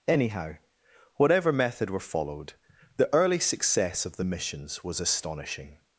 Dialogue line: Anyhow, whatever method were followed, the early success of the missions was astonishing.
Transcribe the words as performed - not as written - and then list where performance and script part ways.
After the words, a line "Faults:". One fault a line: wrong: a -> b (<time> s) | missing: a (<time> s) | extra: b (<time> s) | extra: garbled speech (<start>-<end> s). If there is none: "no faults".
Anyhow, whatever method were followed, the early success of the missions was astonishing.
Faults:
no faults